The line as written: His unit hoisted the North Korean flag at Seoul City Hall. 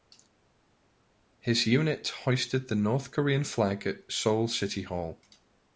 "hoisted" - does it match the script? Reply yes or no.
yes